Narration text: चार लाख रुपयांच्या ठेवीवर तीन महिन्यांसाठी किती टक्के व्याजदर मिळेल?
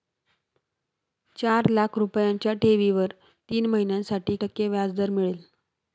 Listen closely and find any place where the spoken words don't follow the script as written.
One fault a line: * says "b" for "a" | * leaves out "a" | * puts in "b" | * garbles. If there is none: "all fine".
* leaves out "किती"